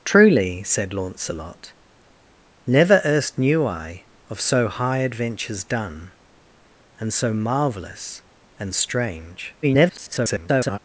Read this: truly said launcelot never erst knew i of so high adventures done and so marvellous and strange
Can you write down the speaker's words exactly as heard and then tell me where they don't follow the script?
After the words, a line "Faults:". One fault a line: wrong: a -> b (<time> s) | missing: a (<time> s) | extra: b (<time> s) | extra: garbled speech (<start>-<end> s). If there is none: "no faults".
truly said launcelot never erst knew i of so high adventures done and so marvellous and strange [garbled]
Faults:
extra: garbled speech (9.6-10.8 s)